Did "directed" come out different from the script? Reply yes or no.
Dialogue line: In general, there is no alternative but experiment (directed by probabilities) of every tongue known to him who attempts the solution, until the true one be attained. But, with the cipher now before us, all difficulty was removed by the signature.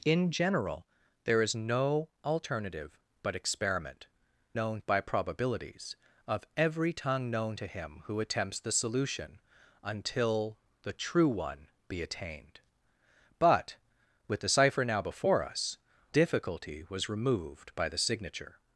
yes